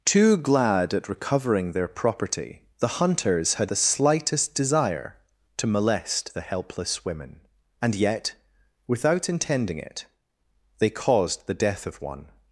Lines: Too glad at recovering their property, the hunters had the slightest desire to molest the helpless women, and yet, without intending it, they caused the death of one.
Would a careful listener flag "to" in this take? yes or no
no